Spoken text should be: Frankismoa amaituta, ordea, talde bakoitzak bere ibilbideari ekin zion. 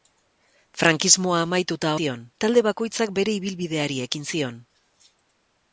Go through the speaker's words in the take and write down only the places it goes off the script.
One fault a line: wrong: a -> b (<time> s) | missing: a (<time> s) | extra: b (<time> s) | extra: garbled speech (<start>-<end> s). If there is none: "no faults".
wrong: ordea -> zion (2.0 s)